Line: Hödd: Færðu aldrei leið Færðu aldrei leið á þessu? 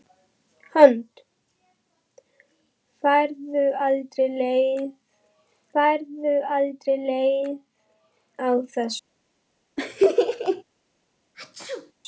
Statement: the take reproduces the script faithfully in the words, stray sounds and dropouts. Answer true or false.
false